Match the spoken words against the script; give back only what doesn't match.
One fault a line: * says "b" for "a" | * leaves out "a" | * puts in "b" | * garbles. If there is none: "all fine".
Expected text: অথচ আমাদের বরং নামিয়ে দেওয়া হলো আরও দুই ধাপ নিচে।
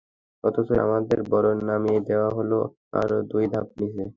all fine